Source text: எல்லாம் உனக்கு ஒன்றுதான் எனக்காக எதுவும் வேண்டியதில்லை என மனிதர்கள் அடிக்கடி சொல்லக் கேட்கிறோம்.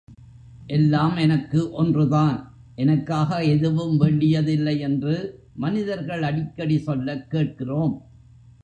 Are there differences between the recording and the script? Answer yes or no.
yes